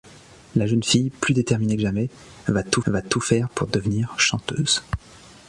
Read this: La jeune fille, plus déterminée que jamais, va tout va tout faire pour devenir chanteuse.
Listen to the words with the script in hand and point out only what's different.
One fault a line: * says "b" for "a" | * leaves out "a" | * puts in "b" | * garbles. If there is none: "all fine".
all fine